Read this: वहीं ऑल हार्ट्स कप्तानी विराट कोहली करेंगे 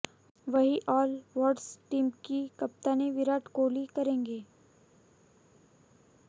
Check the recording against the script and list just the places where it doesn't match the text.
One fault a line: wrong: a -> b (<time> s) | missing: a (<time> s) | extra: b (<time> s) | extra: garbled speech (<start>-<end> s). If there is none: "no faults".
extra: टीम की (1.9 s)